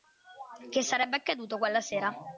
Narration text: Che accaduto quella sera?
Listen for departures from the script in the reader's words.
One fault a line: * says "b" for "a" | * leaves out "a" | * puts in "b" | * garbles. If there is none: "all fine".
* puts in "sarebbe"